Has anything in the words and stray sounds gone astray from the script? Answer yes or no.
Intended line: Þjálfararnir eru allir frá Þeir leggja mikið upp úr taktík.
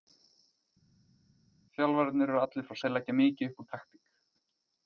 no